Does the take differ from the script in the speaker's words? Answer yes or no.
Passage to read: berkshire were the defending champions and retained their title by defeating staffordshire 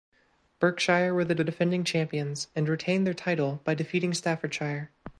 yes